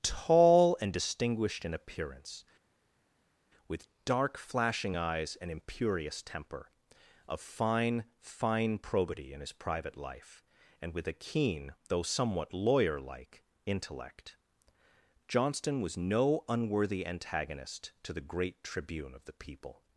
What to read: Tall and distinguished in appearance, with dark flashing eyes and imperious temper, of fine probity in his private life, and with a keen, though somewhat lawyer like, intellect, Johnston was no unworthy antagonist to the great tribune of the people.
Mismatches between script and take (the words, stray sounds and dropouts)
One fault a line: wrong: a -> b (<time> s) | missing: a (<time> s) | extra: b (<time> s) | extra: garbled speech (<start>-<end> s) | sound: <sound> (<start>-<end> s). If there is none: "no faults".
extra: fine (8.2 s)